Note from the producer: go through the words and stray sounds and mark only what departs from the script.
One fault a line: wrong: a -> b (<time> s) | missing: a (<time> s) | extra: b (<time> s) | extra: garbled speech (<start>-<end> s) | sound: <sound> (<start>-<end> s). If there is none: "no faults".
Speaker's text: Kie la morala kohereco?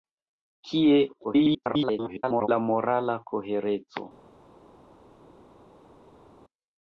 extra: garbled speech (1.2-2.5 s)